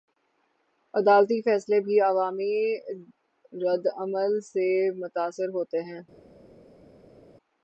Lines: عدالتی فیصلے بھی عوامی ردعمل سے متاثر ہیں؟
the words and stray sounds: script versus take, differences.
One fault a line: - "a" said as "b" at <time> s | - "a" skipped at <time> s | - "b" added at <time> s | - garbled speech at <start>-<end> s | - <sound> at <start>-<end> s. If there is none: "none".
- "ہوتے" added at 5.5 s